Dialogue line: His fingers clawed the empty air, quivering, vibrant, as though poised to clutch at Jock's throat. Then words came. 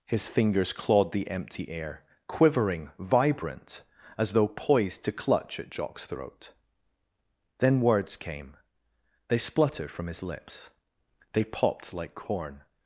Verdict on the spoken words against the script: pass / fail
fail